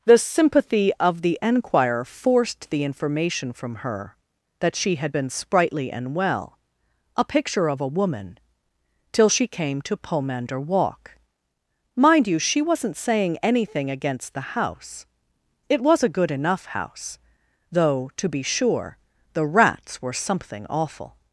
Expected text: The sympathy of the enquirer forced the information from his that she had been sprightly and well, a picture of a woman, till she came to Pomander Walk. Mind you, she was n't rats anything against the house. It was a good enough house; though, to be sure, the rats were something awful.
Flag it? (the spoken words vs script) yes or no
yes